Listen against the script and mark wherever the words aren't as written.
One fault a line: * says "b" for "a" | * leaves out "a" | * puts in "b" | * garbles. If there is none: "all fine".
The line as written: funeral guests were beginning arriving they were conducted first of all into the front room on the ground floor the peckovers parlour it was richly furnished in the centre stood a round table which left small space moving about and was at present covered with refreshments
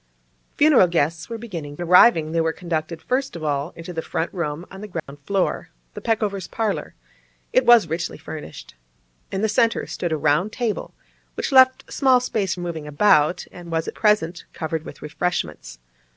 all fine